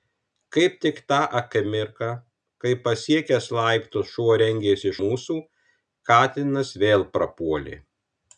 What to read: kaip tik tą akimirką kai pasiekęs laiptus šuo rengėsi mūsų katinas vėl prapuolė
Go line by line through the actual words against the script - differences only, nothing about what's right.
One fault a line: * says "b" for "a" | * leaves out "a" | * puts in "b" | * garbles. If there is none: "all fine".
all fine